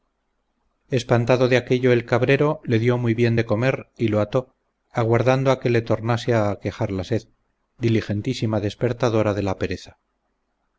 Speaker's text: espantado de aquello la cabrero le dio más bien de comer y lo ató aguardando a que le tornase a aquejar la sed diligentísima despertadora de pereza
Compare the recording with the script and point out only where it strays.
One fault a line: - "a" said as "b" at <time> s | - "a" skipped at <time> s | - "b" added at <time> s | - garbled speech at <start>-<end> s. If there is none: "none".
- "la" said as "el" at 1.9 s
- "más" said as "muy" at 3.0 s
- "la" added at 9.4 s